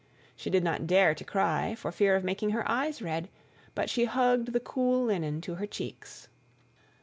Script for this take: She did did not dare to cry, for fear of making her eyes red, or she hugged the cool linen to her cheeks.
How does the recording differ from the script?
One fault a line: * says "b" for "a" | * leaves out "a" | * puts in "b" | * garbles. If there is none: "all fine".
* leaves out "did"
* says "but" for "or"